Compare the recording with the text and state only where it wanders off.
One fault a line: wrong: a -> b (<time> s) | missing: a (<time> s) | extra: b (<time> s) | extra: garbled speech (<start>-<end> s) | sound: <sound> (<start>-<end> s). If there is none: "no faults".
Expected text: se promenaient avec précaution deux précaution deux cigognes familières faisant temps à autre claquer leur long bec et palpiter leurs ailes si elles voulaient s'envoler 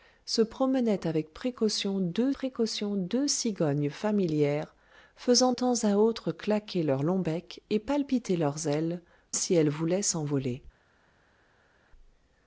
no faults